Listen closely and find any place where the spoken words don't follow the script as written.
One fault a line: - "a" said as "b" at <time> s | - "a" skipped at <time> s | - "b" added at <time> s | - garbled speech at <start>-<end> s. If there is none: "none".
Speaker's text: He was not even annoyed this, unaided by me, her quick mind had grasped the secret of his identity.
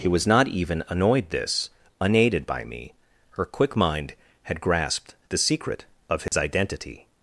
none